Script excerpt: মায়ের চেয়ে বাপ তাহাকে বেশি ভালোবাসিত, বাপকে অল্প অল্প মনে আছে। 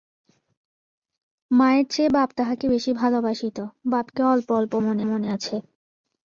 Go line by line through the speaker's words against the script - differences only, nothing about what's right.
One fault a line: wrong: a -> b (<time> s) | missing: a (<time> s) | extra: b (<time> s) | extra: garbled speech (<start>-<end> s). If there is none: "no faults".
extra: মনে (5.1 s)